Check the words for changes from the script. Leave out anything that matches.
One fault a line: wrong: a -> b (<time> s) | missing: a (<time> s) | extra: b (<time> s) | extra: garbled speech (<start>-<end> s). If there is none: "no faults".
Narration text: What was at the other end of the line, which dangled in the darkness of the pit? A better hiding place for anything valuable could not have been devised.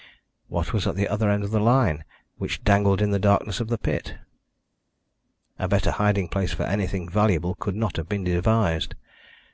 no faults